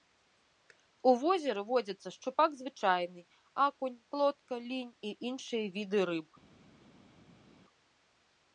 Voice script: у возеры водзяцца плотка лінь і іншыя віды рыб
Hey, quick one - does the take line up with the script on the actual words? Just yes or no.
no